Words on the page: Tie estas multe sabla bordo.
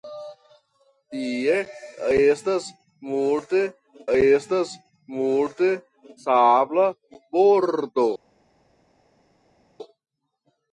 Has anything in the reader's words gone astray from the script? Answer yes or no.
yes